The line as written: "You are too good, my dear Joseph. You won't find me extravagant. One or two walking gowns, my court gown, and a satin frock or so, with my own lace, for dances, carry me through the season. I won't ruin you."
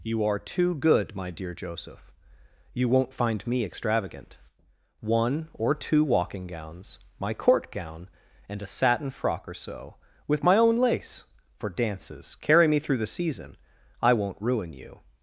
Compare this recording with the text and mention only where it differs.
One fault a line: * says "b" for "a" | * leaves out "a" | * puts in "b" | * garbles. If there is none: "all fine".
all fine